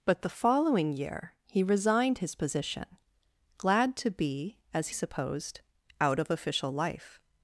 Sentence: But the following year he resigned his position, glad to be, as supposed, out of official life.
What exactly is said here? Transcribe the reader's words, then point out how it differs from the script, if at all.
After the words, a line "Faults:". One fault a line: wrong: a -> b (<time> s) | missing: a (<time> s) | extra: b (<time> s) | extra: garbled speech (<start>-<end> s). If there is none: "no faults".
But the following year he resigned his position, glad to be, as supposed, out of official life.
Faults:
no faults